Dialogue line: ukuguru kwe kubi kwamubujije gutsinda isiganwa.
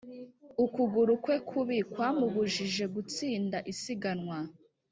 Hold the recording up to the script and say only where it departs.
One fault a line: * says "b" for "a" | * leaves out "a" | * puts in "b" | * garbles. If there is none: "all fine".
all fine